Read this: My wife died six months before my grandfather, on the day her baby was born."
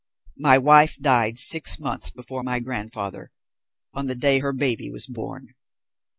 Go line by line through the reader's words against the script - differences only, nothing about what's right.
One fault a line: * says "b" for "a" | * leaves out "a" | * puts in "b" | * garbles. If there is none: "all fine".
all fine